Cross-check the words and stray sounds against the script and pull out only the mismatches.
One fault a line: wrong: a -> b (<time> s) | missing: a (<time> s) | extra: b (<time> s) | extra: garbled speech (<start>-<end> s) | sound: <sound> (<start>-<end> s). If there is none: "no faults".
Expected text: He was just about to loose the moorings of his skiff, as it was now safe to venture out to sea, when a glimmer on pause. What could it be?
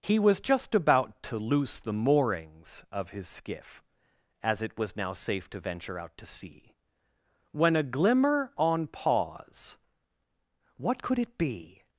no faults